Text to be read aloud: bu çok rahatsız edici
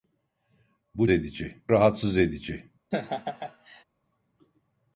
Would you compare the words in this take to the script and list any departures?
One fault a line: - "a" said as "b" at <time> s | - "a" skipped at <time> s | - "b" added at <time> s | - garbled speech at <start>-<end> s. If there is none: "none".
- "çok" said as "edici" at 1.1 s